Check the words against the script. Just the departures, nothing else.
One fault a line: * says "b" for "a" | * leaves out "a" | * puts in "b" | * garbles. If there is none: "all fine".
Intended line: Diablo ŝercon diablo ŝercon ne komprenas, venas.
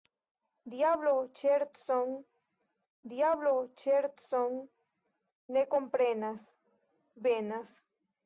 all fine